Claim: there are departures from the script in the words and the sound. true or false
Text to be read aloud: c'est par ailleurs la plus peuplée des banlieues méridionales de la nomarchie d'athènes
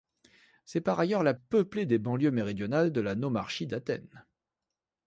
true